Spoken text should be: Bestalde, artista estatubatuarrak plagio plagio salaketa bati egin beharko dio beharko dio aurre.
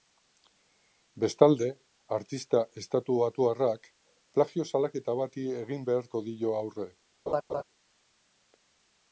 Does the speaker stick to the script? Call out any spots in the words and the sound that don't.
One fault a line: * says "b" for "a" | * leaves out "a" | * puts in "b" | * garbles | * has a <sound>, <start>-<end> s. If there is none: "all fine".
* leaves out "plagio"
* leaves out "beharko dio"
* has a laugh, 7.3-7.6 s